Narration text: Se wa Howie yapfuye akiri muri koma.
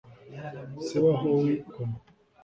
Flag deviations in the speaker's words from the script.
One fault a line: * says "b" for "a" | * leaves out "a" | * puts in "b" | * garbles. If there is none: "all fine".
* leaves out "yapfuye akiri muri"